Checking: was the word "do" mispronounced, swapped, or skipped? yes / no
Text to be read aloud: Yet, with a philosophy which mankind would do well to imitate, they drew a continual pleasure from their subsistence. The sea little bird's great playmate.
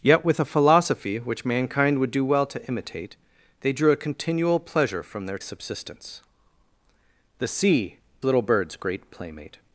no